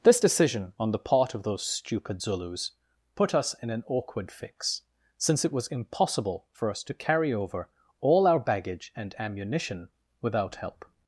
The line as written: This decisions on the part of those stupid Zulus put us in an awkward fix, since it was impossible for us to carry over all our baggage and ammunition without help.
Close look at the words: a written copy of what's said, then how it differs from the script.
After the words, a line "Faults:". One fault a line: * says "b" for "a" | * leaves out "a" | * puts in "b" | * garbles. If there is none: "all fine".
This decision on the part of those stupid Zulus put us in an awkward fix, since it was impossible for us to carry over all our baggage and ammunition without help.
Faults:
* says "decision" for "decisions"